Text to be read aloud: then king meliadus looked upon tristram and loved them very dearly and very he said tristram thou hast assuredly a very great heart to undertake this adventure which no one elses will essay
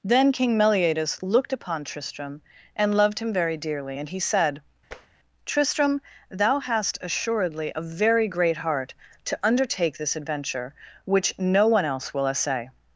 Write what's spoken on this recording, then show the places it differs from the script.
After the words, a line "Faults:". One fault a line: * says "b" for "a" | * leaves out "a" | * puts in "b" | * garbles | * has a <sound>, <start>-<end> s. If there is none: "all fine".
then king meliadus looked upon tristram and loved him very dearly and he said tristram thou hast assuredly a very great heart to undertake this adventure which no one else will essay
Faults:
* says "him" for "them"
* leaves out "very"
* has a tap, 4.9-5.1 s
* says "else" for "elses"